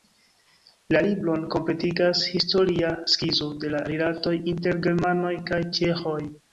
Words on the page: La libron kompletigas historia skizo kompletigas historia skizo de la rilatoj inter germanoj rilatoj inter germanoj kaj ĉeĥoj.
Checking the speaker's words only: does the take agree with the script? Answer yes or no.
no